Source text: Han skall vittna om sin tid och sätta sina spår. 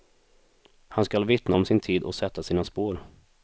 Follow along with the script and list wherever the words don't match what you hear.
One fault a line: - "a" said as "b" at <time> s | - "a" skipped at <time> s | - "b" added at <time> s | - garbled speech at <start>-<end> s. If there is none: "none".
none